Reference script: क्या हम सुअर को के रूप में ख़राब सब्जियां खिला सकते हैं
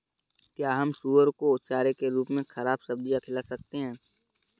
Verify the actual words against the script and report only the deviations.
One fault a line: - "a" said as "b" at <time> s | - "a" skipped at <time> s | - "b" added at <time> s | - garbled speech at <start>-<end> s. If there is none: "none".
- "चारे" added at 1.7 s